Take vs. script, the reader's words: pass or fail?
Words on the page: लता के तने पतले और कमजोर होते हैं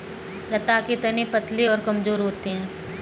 pass